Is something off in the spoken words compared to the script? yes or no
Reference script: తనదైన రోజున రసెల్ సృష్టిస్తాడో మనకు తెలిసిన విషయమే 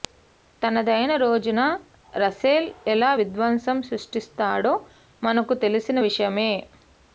yes